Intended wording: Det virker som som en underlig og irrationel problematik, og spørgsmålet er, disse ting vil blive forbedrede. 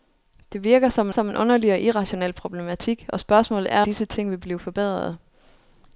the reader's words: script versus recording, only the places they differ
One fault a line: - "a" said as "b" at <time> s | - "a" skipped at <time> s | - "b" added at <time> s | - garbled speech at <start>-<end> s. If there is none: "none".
none